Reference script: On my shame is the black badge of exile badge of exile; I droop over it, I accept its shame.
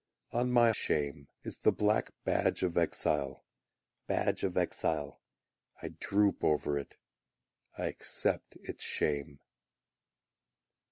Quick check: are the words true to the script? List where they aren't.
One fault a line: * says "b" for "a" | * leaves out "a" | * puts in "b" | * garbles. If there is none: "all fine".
all fine